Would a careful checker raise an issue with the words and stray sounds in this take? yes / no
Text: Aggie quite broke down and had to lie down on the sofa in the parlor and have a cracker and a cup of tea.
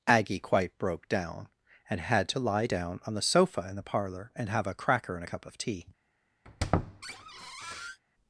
yes